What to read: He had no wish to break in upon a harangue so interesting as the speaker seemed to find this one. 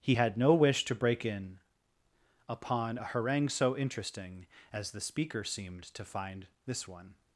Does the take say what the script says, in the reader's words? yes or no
yes